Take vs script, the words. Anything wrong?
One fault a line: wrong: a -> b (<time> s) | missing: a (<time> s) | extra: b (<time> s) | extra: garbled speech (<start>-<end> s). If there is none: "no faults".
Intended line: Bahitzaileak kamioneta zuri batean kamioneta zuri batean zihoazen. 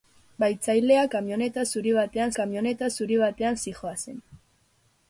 no faults